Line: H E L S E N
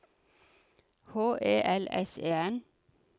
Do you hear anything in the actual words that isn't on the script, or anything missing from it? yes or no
no